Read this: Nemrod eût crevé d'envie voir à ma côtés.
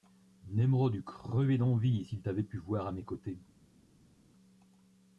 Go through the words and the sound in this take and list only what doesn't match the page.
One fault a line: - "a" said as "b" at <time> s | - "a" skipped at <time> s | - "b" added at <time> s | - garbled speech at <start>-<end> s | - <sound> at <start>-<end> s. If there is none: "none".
- "s'il t'avait pu" added at 2.0 s
- "ma" said as "mes" at 2.9 s